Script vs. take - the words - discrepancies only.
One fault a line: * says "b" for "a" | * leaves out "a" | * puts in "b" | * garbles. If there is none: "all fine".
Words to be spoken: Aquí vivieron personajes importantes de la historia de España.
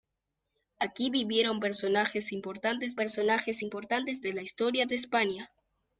* puts in "personajes importantes"